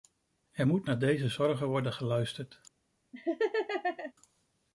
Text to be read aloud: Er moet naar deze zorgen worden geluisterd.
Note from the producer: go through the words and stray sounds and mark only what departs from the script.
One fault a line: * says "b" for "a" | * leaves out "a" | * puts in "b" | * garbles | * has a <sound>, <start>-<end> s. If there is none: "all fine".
* has a laugh, 3.1-4.1 s